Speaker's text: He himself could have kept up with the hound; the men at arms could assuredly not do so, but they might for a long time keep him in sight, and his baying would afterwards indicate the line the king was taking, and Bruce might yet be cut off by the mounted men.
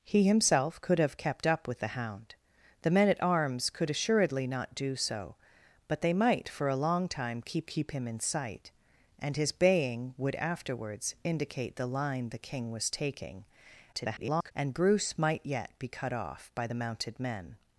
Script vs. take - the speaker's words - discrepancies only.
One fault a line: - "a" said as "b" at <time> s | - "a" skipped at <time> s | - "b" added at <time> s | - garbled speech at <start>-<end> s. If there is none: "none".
- "keep" added at 7.6 s
- garbled speech at 13.9-14.5 s